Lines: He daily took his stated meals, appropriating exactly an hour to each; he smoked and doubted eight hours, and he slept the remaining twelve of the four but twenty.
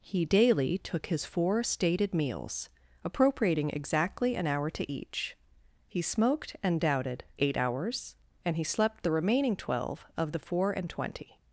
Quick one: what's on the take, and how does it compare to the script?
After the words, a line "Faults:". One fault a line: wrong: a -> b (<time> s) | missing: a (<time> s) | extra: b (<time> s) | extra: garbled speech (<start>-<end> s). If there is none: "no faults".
He daily took his four stated meals, appropriating exactly an hour to each; he smoked and doubted eight hours, and he slept the remaining twelve of the four and twenty.
Faults:
extra: four (1.2 s)
wrong: but -> and (10.7 s)